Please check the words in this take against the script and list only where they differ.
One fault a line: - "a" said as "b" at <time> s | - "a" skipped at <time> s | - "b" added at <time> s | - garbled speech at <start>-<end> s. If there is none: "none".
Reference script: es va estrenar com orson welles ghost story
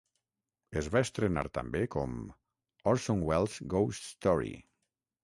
- "també" added at 1.6 s